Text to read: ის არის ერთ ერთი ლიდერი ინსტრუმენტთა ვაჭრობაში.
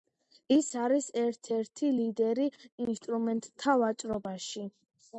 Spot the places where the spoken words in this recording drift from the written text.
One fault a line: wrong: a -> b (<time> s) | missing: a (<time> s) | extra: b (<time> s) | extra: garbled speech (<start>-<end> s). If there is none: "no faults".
no faults